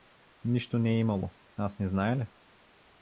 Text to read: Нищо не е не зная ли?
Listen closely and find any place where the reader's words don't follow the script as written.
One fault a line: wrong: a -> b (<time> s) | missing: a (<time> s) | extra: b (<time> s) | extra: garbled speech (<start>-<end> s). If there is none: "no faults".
extra: имало аз (1.0 s)